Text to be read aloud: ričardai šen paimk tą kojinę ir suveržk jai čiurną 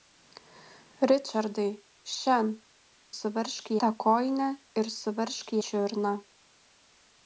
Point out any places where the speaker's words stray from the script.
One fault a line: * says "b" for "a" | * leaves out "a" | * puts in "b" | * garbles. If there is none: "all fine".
* says "suveržk" for "paimk"
* leaves out "jai"